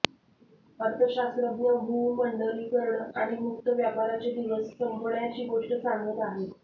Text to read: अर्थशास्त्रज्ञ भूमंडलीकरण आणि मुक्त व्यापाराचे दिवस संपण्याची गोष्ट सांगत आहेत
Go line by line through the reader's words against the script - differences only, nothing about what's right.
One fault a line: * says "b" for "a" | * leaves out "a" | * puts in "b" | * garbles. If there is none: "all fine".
all fine